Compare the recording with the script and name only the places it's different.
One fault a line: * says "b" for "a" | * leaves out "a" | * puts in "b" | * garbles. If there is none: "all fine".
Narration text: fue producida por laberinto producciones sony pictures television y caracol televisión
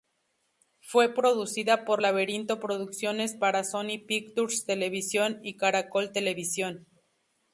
* puts in "para"